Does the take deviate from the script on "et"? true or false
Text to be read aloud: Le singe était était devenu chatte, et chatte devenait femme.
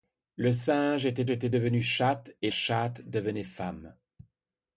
false